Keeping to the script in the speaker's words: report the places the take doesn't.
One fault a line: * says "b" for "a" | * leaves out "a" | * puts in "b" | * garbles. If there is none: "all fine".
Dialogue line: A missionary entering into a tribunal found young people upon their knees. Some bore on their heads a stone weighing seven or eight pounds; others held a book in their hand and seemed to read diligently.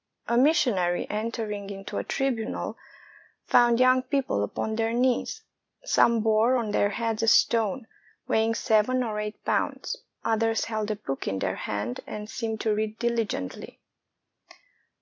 all fine